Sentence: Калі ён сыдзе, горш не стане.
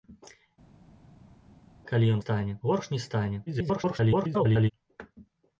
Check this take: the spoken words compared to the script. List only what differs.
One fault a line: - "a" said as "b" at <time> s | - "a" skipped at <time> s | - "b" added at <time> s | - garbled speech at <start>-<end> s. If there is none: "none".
- "сыдзе" said as "стане" at 2.2 s
- garbled speech at 3.5-4.7 s